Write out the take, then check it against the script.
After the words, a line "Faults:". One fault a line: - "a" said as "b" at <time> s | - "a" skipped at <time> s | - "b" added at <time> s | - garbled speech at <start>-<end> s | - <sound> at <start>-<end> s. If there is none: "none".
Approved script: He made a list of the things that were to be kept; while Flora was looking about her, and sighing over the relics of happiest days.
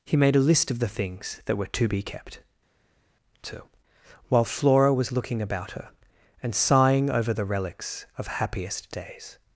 He made a list of the things that were to be kept; too while Flora was looking about her, and sighing over the relics of happiest days.
Faults:
- "too" added at 3.4 s